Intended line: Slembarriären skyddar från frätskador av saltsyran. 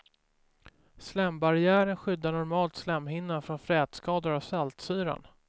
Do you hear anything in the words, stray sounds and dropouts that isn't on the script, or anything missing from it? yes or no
yes